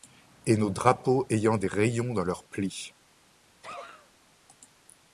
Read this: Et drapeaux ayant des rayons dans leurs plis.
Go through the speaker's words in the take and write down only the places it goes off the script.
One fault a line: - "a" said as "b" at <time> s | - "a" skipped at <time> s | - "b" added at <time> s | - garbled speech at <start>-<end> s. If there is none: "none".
- "nos" added at 0.6 s